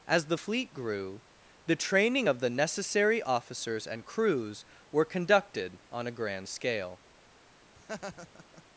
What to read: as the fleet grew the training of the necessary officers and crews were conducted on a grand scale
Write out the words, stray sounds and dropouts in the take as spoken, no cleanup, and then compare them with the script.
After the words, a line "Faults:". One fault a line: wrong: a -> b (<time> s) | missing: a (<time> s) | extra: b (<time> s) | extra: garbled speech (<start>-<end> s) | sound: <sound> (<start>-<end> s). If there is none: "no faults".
as the fleet grew the training of the necessary officers and crews were conducted on a grand scale
Faults:
sound: laugh (7.8-8.6 s)